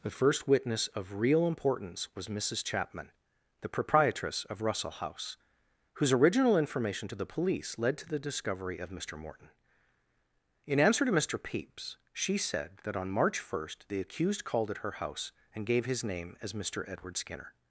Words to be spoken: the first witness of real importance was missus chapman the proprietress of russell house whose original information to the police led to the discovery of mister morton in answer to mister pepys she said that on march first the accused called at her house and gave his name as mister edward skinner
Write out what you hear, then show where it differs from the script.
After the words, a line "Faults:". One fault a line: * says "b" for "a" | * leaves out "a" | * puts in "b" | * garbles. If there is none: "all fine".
the first witness of real importance was missus chapman the proprietress of russell house whose original information to the police led to the discovery of mister morton in answer to mister pepys she said that on march first the accused called at her house and gave his name as mister edward skinner
Faults:
all fine